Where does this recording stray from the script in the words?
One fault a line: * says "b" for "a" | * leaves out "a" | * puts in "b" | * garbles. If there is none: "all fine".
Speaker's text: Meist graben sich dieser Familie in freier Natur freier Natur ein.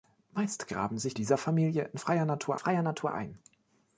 all fine